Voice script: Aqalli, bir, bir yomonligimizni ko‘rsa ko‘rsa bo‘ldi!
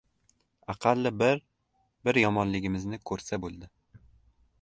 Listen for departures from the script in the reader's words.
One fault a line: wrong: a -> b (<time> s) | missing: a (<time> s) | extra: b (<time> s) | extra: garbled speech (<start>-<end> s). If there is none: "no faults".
missing: ko‘rsa (3.4 s)